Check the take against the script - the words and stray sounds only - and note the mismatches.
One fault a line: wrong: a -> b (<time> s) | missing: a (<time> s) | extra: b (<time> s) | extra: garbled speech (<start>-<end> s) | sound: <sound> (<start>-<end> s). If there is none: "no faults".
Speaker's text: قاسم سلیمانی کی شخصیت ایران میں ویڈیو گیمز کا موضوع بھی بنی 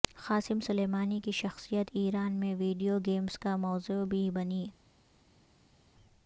no faults